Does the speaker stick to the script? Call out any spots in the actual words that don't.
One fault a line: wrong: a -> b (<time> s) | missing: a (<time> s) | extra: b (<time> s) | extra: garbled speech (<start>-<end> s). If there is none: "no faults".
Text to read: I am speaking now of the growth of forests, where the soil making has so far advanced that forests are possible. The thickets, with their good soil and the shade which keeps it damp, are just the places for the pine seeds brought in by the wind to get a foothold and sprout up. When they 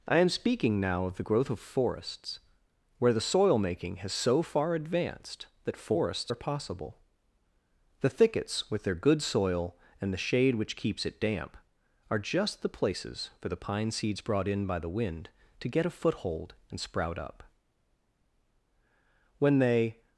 no faults